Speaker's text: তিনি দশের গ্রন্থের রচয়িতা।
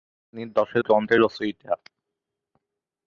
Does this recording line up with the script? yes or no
yes